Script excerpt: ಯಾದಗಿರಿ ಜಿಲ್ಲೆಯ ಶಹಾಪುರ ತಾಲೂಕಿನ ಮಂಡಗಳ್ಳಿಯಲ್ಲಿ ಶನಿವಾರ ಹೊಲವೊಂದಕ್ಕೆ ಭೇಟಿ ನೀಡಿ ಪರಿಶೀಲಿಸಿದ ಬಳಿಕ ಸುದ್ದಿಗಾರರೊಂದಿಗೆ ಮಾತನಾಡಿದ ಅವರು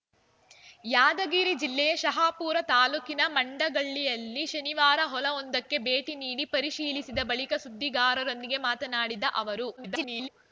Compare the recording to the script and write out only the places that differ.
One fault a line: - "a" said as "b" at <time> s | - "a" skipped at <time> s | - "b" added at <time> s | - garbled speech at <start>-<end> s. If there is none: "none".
- garbled speech at 9.8-10.3 s